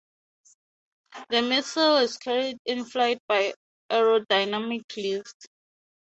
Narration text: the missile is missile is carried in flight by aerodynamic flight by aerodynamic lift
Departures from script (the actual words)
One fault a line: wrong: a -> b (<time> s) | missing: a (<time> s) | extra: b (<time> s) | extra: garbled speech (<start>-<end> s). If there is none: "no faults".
missing: missile is (2.2 s)
missing: flight by aerodynamic (4.8 s)